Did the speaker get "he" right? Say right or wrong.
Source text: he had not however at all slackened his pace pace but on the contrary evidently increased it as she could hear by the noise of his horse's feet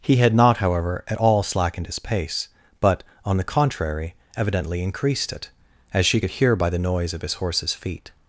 right